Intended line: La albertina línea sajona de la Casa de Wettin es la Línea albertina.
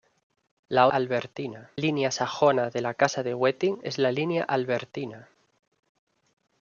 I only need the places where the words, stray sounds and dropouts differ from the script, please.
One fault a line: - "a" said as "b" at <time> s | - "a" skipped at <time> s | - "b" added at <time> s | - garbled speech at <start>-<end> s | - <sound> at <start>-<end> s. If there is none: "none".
none